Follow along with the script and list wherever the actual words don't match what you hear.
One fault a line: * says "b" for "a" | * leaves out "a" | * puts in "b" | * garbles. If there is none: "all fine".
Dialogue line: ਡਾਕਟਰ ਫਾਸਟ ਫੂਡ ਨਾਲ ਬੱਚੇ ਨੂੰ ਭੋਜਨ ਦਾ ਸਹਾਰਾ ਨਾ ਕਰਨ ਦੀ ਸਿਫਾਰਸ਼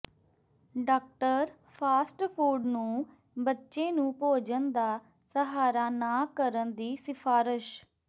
* says "ਨੂੰ" for "ਨਾਲ"